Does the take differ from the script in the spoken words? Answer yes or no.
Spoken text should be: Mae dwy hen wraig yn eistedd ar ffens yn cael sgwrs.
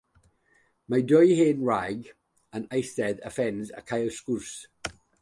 no